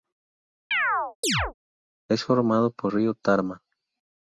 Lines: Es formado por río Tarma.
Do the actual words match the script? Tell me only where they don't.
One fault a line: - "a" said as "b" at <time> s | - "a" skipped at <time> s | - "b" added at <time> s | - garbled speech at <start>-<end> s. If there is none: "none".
none